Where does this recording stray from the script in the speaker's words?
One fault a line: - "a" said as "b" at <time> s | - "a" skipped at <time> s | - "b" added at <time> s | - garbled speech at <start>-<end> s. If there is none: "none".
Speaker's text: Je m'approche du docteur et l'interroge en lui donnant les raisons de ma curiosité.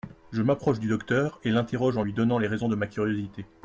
none